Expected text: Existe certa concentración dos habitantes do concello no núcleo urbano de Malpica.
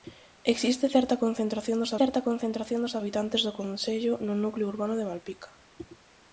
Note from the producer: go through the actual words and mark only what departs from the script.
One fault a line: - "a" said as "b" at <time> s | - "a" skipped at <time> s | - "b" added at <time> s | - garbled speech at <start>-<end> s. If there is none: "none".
- "certa concentración dos" added at 2.0 s